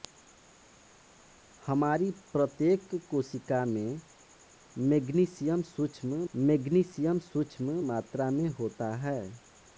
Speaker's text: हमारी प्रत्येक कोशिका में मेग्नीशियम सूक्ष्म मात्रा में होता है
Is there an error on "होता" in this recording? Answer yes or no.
no